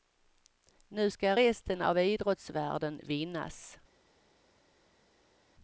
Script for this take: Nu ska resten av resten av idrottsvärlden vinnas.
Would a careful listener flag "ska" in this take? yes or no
no